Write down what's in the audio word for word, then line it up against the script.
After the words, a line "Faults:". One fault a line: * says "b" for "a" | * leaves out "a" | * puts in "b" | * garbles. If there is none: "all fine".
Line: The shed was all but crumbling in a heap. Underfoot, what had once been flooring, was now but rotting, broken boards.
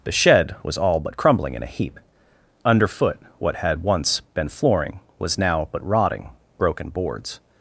The shed was all but crumbling in a heap. Underfoot, what had once been flooring, was now but rotting, broken boards.
Faults:
all fine